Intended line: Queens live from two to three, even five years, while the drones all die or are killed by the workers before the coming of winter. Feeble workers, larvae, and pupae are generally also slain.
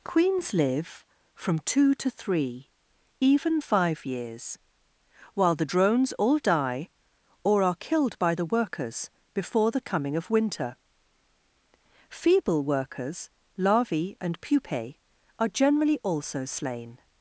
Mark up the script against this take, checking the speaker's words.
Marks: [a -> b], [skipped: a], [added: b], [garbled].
Queens live from two to three, even five years, while the drones all die or are killed by the workers before the coming of winter. Feeble workers, larvae, and pupae are generally also slain.